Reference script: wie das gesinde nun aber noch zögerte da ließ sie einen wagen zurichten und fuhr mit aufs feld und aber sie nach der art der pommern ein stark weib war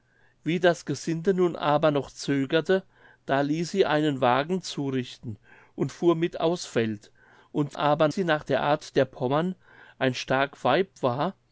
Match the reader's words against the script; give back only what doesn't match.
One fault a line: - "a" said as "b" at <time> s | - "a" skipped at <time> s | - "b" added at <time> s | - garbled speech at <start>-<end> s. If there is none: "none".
none